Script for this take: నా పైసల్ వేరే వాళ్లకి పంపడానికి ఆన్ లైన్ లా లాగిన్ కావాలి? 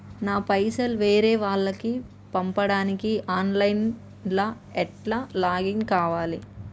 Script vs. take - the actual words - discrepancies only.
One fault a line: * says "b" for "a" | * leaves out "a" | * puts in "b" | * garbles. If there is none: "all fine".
* puts in "ఎట్ల"